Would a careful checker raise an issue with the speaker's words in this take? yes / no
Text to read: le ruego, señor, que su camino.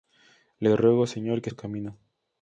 no